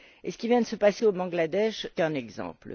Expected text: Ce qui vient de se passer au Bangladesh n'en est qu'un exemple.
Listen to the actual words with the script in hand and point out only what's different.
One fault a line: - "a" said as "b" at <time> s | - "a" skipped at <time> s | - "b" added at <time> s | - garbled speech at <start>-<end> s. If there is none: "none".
- "n'en est" skipped at 1.9 s